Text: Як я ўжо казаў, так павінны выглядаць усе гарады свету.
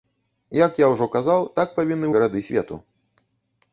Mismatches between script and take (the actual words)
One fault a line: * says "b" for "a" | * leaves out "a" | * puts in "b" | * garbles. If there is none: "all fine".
* leaves out "выглядаць усе"